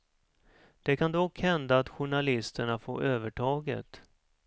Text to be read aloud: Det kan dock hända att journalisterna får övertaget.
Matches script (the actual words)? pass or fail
pass